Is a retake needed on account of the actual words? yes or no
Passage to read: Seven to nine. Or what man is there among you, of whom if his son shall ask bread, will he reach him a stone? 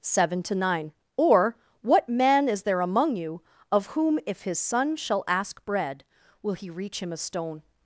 no